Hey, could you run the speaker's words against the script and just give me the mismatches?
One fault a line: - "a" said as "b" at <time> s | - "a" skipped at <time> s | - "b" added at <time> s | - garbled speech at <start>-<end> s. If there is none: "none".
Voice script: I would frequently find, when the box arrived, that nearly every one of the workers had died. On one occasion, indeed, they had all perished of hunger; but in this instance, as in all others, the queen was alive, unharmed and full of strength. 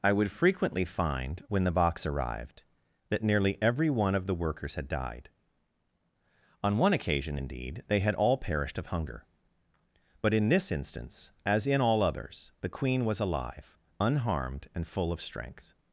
none